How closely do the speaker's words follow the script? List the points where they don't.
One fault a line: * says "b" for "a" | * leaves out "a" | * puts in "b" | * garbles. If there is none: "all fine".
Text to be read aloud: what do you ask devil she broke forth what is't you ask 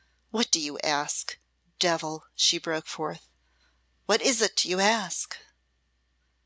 all fine